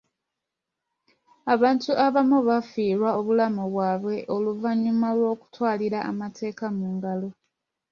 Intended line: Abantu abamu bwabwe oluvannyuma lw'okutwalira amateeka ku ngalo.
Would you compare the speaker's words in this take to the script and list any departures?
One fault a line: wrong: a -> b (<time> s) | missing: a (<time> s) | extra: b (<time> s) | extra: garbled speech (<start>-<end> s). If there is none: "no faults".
extra: bafiirwa obulamu (2.5 s)
wrong: ku -> mu (6.8 s)